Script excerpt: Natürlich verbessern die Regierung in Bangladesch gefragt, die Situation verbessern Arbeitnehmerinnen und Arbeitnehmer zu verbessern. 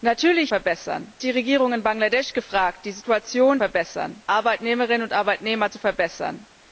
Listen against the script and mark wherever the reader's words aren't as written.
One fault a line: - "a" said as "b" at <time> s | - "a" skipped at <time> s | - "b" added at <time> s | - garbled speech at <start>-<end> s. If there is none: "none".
none